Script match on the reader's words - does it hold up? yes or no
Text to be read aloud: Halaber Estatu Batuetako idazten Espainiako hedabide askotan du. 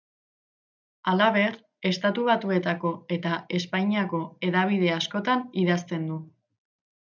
no